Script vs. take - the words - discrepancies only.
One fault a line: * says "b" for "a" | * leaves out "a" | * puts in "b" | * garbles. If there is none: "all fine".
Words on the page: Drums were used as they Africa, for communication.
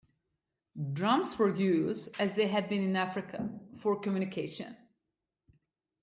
* puts in "had been in"